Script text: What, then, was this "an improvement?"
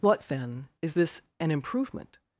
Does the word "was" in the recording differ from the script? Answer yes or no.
yes